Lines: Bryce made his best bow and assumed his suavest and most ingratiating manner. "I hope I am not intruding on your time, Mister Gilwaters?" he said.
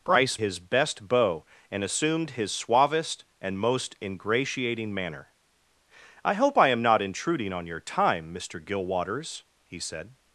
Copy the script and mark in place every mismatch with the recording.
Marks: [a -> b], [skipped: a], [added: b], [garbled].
Bryce [skipped: made] his best bow and assumed his suavest and most ingratiating manner. "I hope I am not intruding on your time, Mister Gilwaters?" he said.